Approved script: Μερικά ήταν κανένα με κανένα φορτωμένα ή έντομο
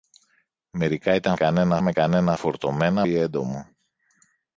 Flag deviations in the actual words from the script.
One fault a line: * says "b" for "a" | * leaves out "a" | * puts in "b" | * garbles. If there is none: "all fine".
all fine